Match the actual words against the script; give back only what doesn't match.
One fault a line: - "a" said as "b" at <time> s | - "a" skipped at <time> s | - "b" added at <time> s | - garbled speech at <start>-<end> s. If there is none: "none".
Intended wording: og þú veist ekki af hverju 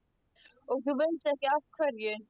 none